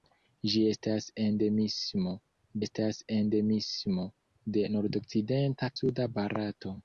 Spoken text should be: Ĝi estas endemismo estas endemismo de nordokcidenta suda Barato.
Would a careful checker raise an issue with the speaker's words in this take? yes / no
no